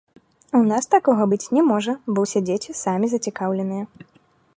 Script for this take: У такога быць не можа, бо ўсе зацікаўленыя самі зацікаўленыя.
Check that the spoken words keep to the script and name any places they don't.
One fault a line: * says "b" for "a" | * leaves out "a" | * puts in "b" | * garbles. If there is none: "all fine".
* puts in "нас"
* says "дзеці" for "зацікаўленыя"